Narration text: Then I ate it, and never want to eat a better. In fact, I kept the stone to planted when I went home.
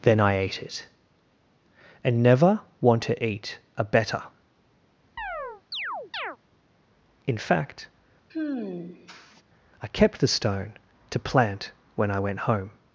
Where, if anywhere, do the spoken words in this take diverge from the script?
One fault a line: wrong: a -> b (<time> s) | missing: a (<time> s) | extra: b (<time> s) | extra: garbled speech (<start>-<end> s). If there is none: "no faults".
wrong: planted -> plant (11.2 s)